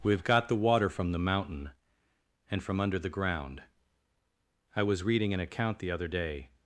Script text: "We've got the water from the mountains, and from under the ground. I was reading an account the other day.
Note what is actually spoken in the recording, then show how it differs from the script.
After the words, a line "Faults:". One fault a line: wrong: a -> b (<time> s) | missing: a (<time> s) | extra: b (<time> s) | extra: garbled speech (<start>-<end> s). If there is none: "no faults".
"We've got the water from the mountain, and from under the ground. I was reading an account the other day.
Faults:
wrong: mountains -> mountain (1.2 s)